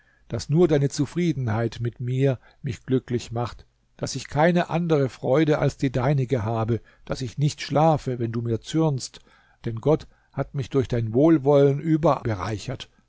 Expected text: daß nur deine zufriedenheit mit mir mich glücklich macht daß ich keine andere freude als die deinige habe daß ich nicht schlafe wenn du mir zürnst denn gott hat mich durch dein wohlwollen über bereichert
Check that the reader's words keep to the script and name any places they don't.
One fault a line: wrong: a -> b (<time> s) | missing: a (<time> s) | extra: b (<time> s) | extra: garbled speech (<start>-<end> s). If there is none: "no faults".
no faults